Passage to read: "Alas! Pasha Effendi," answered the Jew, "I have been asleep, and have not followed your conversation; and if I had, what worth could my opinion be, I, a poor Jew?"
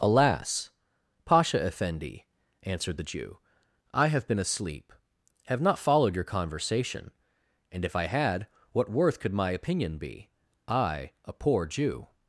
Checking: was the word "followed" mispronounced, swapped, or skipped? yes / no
no